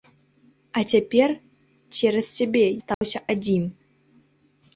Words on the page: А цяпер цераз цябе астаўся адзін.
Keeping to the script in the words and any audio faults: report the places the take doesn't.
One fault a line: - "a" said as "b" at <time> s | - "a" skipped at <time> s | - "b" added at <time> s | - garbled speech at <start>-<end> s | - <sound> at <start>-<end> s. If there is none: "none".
- dropout at 2.9-3.0 s